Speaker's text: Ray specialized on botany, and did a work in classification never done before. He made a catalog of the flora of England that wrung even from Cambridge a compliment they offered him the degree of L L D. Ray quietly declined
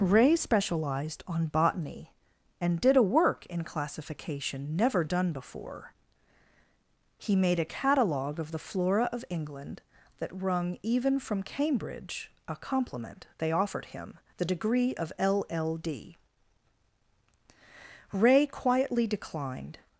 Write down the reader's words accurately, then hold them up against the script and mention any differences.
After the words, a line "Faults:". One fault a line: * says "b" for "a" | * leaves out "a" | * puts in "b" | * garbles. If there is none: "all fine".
Ray specialized on botany, and did a work in classification never done before. He made a catalog of the flora of England that wrung even from Cambridge a compliment they offered him the degree of L L D. Ray quietly declined
Faults:
all fine